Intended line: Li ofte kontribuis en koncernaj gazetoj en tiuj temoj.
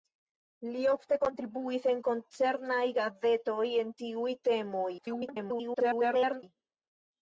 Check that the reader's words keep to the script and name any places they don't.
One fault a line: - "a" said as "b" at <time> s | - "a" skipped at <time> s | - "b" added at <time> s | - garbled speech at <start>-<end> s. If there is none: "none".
- garbled speech at 5.0-6.4 s